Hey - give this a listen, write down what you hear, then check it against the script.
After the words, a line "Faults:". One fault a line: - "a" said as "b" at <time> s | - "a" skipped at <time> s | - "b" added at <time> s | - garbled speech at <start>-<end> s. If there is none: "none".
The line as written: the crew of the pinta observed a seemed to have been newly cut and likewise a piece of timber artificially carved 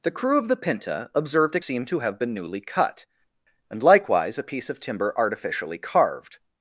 the crew of the pinta observed a seemed to have been newly cut and likewise a piece of timber artificially carved
Faults:
none